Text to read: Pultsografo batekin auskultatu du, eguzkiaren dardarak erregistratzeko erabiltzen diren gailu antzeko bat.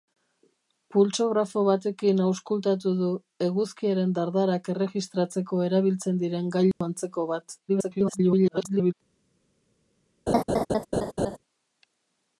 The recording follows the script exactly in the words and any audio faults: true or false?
false